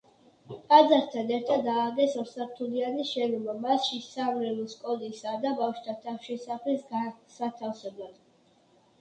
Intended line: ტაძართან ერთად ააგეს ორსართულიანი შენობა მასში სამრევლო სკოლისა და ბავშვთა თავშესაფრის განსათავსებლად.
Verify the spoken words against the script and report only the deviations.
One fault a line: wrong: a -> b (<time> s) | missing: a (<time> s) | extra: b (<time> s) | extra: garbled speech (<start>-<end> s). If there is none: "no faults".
no faults